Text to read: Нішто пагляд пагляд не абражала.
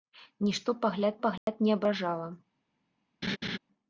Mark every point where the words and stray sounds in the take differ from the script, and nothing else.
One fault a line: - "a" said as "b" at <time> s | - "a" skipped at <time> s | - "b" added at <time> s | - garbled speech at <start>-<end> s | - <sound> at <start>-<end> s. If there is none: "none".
- dropout at 1.4-1.5 s
- laugh at 3.2-3.6 s